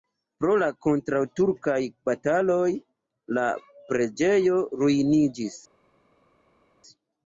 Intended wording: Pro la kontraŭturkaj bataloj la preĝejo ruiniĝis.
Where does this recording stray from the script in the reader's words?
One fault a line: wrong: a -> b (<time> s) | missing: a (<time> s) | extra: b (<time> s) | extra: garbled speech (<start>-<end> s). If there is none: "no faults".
no faults